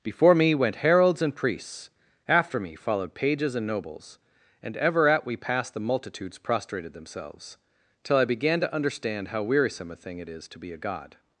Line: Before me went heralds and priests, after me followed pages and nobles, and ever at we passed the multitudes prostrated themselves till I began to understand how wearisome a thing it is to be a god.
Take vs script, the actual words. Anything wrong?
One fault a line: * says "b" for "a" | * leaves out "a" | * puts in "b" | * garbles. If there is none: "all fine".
all fine